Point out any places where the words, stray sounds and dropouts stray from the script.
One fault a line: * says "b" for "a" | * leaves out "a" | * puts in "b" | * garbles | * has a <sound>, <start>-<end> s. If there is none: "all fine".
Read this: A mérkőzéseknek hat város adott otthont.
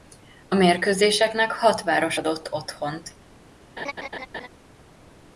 * has a laugh, 3.8-4.5 s